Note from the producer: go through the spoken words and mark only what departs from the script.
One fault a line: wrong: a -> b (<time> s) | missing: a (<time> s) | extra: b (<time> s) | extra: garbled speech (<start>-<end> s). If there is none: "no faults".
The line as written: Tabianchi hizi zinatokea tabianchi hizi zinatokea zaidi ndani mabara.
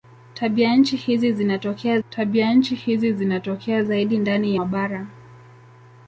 no faults